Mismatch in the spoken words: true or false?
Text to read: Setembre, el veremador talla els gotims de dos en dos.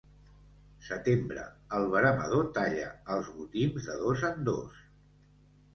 false